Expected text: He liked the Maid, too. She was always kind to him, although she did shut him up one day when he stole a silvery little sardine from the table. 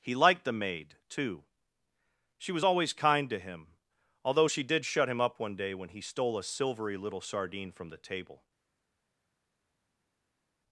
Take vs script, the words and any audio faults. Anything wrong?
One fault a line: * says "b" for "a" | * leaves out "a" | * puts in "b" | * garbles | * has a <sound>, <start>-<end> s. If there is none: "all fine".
all fine